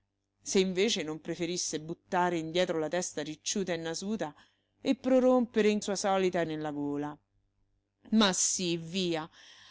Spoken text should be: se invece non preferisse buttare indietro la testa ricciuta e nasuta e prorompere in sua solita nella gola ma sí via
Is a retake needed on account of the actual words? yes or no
no